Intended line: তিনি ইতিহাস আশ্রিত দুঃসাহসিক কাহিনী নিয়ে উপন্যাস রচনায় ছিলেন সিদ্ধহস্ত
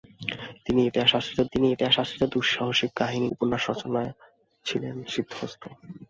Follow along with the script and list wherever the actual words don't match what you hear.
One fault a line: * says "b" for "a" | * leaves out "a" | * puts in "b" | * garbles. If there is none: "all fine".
* puts in "তিনি ইতিহাস আশ্রিত"
* leaves out "নিয়ে"